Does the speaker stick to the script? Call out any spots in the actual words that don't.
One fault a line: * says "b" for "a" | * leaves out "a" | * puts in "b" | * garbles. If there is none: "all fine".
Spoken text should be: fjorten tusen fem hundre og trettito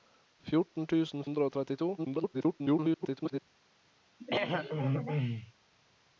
* leaves out "fem"
* garbles